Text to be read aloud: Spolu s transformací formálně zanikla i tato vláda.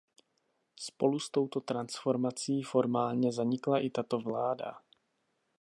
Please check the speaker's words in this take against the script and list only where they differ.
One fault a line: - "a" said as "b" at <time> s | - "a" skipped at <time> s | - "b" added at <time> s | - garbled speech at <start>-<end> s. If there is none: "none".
- "touto" added at 1.3 s